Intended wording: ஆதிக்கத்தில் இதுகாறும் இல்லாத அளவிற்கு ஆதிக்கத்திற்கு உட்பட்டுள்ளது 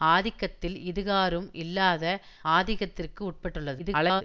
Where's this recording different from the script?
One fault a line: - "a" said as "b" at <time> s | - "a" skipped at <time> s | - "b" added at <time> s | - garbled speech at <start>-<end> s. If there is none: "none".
- "அளவிற்கு" skipped at 2.0 s
- garbled speech at 3.8-4.2 s